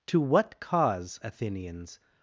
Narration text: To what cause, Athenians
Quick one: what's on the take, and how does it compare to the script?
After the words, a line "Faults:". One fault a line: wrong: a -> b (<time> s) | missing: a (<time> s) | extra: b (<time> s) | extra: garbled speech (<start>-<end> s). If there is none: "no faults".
To what cause, Athenians
Faults:
no faults